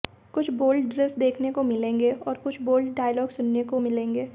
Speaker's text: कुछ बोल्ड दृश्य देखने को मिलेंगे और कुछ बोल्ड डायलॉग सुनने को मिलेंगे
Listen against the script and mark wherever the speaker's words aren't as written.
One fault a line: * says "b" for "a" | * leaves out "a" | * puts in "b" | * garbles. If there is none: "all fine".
all fine